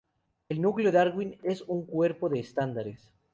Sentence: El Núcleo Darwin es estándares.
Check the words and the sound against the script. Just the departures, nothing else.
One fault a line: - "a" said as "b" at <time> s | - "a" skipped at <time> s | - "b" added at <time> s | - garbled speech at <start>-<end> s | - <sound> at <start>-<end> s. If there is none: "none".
- "un cuerpo de" added at 1.6 s